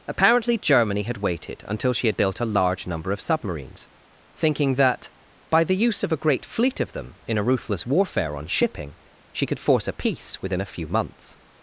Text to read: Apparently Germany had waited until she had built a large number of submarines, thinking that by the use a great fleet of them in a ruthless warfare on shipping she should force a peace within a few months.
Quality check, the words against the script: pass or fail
fail